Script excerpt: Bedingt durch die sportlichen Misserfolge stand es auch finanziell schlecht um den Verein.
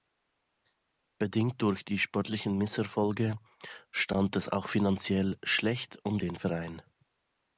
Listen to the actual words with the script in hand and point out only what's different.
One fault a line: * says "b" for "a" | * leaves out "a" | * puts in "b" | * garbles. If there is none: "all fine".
all fine